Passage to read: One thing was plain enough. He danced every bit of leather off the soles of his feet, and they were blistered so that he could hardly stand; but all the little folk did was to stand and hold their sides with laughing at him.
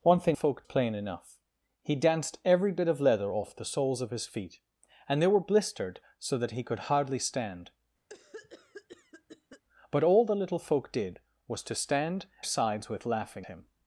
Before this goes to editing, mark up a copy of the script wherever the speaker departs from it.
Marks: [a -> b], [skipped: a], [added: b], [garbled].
One thing [was -> folk] plain enough. He danced every bit of leather off the soles of his feet, and they were blistered so that he could hardly stand; but all the little folk did was to stand [skipped: and hold their] sides with laughing [skipped: at] him.